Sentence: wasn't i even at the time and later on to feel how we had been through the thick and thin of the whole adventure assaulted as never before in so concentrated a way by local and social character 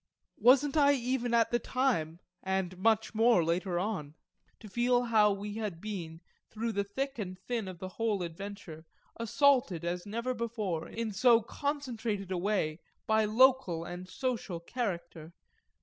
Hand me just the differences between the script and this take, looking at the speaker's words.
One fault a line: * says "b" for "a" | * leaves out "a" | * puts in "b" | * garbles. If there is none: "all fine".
* puts in "much more"